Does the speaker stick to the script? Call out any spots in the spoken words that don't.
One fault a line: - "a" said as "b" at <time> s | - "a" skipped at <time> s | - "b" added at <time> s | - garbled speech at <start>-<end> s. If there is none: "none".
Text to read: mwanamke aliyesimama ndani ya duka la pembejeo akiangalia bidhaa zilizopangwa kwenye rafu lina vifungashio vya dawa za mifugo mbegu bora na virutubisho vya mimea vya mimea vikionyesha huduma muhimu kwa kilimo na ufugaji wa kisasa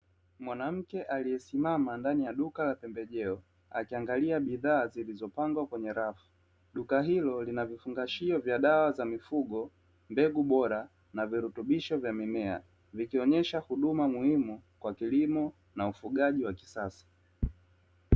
- "duka hilo" added at 6.7 s
- "vya mimea" skipped at 12.6 s